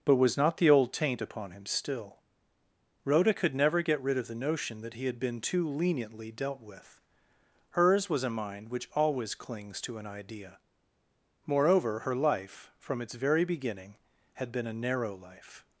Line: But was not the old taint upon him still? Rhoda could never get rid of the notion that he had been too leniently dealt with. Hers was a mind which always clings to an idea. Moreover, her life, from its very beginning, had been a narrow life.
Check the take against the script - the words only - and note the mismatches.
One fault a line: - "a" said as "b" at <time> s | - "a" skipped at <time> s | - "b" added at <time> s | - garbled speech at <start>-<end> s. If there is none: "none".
none